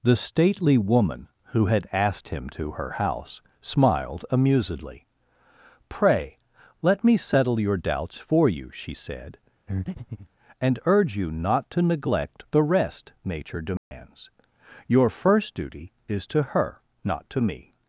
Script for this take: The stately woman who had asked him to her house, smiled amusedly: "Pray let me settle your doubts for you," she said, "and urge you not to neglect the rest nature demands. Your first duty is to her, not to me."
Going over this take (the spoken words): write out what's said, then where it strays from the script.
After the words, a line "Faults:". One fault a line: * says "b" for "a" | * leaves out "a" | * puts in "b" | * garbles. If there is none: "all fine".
The stately woman who had asked him to her house, smiled amusedly: "Pray let me settle your doubts for you," she said, "and urge you not to neglect the rest nature demands. Your first duty is to her, not to me."
Faults:
all fine